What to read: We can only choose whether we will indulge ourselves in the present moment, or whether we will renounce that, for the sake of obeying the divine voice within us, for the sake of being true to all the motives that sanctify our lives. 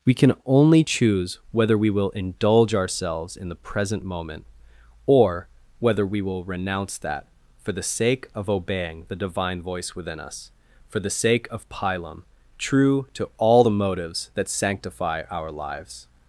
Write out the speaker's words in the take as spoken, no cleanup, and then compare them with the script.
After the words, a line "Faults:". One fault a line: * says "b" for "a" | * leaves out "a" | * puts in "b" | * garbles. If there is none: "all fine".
We can only choose whether we will indulge ourselves in the present moment, or whether we will renounce that, for the sake of obeying the divine voice within us, for the sake of pilum true to all the motives that sanctify our lives.
Faults:
* says "pilum" for "being"